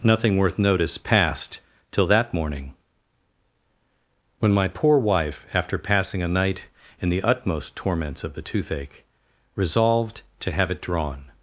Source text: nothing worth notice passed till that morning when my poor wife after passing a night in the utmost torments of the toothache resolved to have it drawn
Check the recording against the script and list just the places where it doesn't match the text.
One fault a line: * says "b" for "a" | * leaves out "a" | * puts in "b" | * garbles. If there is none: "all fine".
all fine